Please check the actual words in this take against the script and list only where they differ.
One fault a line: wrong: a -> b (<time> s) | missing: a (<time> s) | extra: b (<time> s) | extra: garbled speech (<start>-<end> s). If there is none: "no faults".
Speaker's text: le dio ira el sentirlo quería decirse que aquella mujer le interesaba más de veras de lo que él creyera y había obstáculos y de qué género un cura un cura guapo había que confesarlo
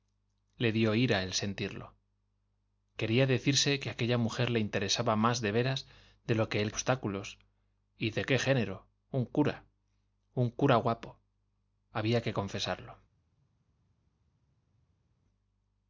missing: creyera y había (6.7 s)